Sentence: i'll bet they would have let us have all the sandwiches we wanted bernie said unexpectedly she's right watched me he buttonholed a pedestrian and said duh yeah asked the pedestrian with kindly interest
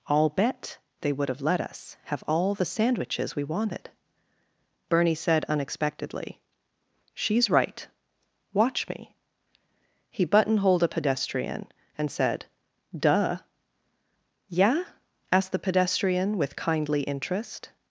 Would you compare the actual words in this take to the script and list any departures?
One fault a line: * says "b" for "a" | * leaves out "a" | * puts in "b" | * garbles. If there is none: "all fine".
* says "watch" for "watched"